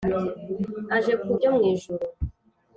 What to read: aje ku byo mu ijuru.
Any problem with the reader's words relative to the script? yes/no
no